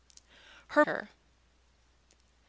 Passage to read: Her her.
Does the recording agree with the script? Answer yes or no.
yes